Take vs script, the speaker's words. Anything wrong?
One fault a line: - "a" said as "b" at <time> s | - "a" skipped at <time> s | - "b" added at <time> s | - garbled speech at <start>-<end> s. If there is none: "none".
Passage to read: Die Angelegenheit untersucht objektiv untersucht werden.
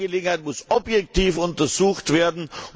- "untersucht" said as "muss" at 0.4 s